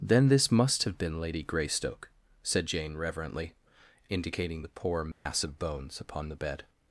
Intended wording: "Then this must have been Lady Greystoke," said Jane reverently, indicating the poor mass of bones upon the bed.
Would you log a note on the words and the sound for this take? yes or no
yes